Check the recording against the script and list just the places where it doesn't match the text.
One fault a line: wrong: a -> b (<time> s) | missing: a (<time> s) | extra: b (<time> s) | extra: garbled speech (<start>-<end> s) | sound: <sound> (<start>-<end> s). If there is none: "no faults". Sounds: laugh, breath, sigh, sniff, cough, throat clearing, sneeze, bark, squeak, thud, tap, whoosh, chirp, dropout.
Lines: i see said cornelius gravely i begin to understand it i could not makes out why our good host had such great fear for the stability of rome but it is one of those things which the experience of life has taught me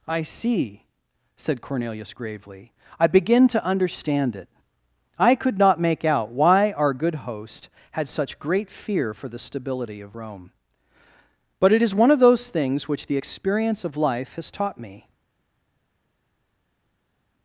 wrong: makes -> make (5.8 s)